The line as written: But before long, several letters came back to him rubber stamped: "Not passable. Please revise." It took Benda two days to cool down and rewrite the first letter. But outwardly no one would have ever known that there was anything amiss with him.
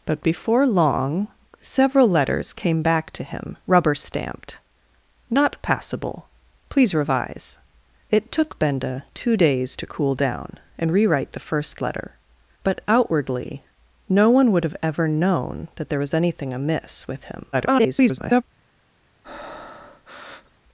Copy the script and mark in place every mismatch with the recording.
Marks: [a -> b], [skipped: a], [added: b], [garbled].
But before long, several letters came back to him rubber stamped: "Not passable. Please revise." It took Benda two days to cool down and rewrite the first letter. But outwardly no one would have ever known that there was anything amiss with him. [garbled]